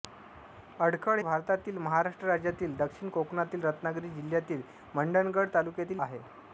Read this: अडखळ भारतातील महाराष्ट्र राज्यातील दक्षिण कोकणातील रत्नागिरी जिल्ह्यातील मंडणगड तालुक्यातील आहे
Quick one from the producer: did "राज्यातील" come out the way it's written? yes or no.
yes